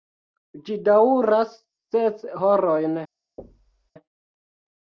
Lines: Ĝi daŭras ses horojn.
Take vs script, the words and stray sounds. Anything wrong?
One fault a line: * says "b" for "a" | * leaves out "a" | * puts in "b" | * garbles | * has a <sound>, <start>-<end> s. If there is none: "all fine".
* has a thud, 3.4-3.9 s